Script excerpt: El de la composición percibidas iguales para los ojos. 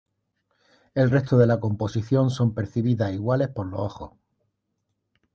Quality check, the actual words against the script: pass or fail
fail